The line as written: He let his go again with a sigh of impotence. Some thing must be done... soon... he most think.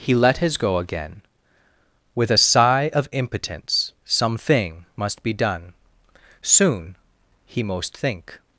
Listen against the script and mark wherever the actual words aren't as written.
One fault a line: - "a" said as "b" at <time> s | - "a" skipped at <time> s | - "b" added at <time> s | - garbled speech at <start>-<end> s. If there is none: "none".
none